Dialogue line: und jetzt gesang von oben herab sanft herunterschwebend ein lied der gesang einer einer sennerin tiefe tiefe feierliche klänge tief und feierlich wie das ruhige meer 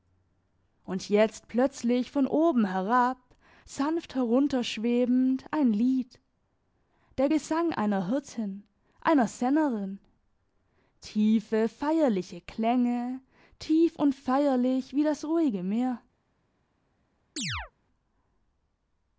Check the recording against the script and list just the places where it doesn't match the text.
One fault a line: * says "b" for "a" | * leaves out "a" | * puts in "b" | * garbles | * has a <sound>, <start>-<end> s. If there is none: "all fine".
* says "plötzlich" for "gesang"
* puts in "hirtin"
* leaves out "tiefe"
* has a chirp, 17.4-17.7 s